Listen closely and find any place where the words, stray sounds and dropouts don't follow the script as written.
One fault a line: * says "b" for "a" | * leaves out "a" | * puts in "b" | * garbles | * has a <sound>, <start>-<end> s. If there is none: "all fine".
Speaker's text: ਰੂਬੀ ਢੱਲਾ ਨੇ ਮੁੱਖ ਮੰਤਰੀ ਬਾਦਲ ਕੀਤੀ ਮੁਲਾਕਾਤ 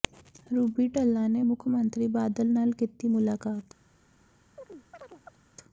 * puts in "ਨਾਲ"
* has a chirp, 4.6-5.4 s